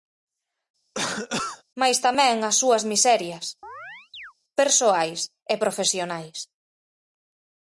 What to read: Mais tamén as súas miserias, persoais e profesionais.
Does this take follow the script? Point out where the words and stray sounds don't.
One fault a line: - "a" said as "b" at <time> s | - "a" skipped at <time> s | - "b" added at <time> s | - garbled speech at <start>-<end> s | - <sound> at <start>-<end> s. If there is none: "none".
- cough at 0.9-1.6 s
- chirp at 3.6-4.3 s